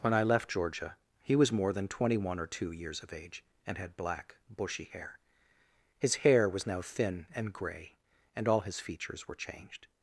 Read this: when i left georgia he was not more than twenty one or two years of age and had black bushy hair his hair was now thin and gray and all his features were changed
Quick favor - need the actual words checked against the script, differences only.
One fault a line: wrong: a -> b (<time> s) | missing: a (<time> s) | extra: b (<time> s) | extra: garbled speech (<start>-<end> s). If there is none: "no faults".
missing: not (1.5 s)